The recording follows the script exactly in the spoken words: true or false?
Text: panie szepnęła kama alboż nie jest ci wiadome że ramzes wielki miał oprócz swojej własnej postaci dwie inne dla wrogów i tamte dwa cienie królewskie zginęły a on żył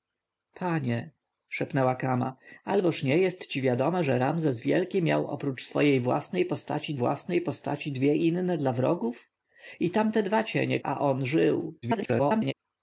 false